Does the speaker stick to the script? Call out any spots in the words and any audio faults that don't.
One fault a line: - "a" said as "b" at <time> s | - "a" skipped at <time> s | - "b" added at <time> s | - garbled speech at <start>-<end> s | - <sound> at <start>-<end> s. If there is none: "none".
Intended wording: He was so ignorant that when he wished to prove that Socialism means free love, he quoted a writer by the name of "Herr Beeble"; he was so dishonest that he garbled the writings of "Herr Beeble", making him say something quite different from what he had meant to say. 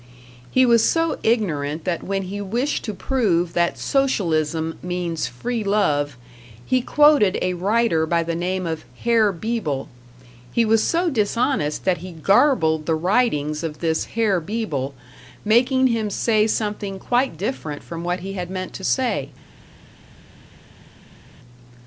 - "this" added at 13.8 s